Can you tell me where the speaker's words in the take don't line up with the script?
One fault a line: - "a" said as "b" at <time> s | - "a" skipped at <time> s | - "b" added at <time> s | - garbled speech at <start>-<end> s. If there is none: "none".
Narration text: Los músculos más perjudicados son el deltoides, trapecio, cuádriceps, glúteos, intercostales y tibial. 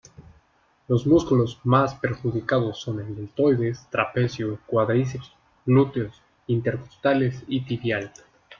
none